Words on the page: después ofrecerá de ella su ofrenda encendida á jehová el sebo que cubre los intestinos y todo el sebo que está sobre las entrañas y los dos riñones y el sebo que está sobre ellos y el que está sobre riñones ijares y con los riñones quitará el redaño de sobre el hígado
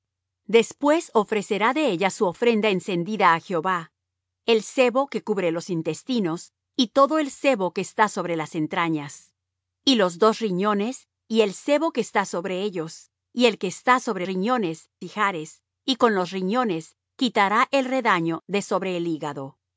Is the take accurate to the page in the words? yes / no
yes